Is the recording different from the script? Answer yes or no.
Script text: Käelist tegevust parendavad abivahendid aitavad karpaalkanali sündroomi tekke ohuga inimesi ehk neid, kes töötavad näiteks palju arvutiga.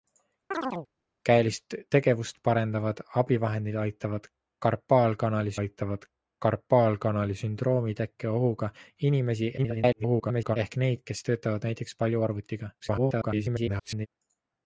yes